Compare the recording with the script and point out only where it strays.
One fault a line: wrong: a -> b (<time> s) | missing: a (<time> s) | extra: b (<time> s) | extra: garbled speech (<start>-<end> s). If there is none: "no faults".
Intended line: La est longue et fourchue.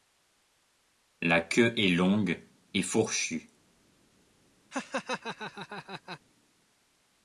extra: queue (1.4 s)